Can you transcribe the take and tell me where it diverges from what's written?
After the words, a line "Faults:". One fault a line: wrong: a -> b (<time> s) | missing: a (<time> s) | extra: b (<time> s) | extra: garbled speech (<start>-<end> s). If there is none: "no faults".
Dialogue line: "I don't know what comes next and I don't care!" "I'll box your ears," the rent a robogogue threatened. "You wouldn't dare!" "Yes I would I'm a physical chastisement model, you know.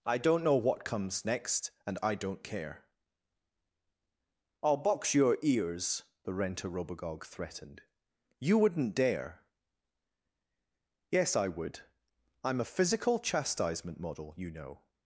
"I don't know what comes next and I don't care!" "I'll box your ears," the rent a robogogue threatened. "You wouldn't dare!" "Yes I would I'm a physical chastisement model, you know.
Faults:
no faults